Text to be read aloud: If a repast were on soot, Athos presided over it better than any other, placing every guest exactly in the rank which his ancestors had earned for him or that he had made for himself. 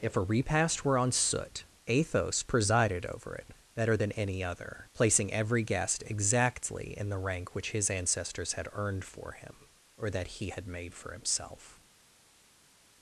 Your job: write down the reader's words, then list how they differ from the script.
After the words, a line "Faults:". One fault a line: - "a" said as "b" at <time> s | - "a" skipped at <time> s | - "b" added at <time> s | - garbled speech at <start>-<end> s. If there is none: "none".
If a repast were on soot, Athos presided over it better than any other, placing every guest exactly in the rank which his ancestors had earned for him or that he had made for himself.
Faults:
none